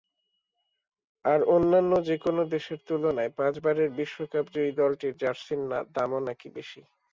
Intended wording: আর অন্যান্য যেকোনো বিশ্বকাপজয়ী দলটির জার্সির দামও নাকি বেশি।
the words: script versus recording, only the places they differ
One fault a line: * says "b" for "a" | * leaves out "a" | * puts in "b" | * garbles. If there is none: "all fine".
* puts in "দেশের তুলনায় পাঁচবারের"